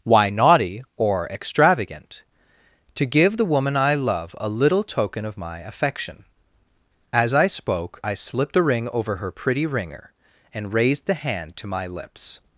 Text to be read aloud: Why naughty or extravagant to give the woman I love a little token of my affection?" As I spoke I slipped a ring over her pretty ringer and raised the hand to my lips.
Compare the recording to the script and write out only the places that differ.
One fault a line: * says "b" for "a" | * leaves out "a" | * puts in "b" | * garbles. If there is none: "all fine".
all fine